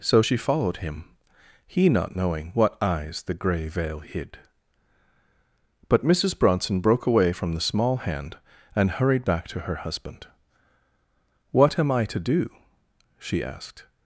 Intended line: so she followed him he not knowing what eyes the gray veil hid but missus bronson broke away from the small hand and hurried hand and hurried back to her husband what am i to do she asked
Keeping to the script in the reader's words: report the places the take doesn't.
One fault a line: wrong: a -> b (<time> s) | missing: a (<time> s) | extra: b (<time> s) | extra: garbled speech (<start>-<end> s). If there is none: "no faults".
missing: hand and hurried (9.2 s)